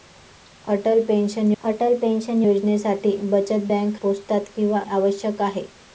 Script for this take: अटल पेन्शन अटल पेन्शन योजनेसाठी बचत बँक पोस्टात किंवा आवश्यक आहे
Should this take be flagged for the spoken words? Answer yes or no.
no